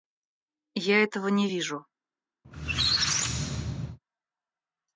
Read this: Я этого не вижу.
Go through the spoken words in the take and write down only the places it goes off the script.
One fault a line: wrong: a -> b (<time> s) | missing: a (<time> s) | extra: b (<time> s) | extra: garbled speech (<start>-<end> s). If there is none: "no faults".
no faults